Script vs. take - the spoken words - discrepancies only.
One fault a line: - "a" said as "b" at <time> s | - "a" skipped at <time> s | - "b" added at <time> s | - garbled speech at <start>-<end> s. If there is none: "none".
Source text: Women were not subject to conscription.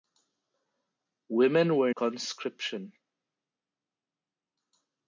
- "not subject to" skipped at 1.9 s